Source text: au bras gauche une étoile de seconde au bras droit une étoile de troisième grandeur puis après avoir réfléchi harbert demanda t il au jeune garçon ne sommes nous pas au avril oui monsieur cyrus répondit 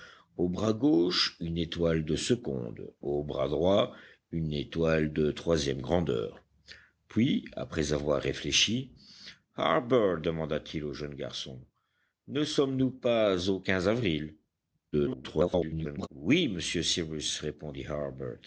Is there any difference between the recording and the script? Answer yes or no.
yes